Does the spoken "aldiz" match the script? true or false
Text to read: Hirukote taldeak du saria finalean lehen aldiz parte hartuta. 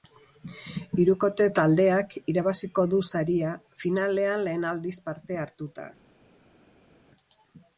true